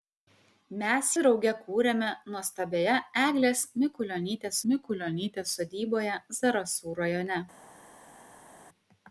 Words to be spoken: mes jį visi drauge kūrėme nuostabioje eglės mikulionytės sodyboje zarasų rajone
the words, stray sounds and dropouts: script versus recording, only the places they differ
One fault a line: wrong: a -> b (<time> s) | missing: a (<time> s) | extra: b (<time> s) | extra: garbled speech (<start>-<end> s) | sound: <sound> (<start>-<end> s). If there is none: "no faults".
missing: jį visi (1.1 s)
extra: mikulionytės (4.7 s)